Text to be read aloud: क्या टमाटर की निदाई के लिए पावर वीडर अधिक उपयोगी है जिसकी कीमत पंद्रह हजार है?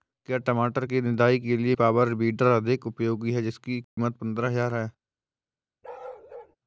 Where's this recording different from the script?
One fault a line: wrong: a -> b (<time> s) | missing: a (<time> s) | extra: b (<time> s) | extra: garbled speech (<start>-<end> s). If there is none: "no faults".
no faults